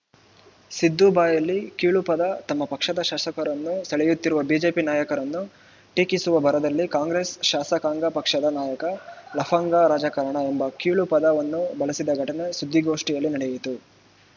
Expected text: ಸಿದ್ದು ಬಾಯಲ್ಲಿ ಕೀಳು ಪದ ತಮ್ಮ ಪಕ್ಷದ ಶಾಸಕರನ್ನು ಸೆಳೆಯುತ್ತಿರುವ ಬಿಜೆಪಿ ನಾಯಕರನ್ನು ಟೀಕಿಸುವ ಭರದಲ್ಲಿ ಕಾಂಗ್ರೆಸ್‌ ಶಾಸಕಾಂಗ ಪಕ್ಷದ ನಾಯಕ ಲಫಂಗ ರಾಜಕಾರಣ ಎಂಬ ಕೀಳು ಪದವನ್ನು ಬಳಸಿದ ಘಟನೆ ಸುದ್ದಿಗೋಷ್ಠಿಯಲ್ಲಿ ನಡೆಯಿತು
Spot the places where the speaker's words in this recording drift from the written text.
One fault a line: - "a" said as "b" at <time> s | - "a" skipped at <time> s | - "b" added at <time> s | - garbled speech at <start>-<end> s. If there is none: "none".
none